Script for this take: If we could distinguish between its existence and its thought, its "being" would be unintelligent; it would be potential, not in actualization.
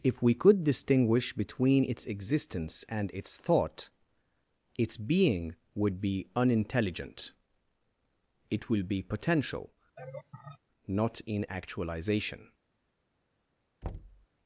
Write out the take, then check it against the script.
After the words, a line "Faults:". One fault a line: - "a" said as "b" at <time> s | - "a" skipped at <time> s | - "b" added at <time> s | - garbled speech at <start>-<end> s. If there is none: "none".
If we could distinguish between its existence and its thought, its "being" would be unintelligent; it will be potential, not in actualization.
Faults:
- "would" said as "will" at 8.7 s